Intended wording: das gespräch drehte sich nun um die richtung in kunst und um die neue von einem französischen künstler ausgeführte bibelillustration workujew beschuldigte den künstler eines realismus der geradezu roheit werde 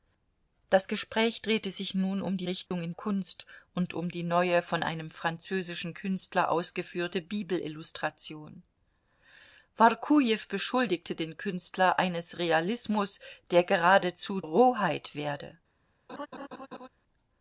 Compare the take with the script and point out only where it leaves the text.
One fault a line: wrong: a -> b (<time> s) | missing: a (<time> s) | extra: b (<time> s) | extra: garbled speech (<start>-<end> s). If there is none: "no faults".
no faults